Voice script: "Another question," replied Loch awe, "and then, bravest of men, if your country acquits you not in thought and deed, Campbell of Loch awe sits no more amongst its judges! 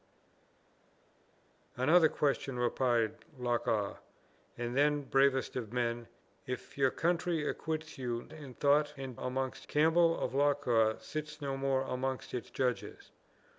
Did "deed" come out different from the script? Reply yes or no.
yes